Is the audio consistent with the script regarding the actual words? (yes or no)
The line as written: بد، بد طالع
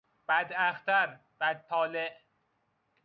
no